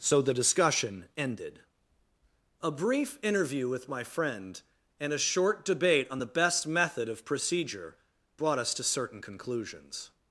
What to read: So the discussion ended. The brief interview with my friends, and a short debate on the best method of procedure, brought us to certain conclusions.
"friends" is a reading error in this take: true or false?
true